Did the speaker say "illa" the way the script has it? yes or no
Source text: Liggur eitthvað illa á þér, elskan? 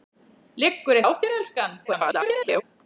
no